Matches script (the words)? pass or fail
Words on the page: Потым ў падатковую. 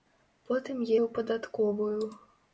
pass